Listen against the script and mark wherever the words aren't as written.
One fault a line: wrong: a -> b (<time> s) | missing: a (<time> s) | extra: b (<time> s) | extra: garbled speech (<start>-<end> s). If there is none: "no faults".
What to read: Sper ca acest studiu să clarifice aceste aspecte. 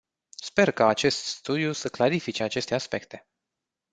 no faults